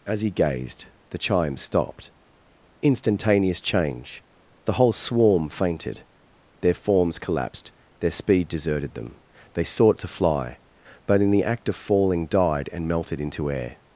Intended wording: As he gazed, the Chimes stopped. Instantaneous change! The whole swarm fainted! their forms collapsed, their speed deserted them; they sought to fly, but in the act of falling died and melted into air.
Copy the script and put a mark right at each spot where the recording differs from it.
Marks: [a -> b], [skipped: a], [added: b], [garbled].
As he gazed, the Chimes stopped. Instantaneous change! The whole swarm fainted! their forms collapsed, their speed deserted them; they sought to fly, but in the act of falling died and melted into air.